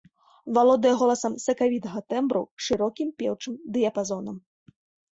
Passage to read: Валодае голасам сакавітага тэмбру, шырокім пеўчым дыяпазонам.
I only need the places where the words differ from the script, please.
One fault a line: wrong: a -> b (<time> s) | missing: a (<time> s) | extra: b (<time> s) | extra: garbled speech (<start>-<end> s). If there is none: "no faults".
no faults